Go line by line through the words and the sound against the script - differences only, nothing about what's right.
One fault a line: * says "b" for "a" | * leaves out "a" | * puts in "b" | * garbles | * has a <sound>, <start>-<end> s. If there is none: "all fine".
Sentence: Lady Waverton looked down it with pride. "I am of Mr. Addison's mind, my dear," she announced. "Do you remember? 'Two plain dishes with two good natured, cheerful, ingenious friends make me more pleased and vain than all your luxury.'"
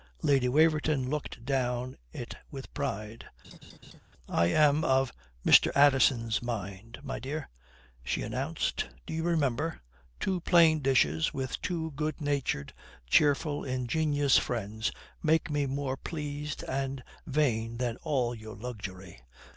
* has a laugh, 3.4-4.0 s